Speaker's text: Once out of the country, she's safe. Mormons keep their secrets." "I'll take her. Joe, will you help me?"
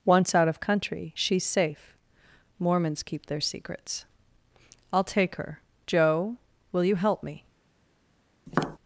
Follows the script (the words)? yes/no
no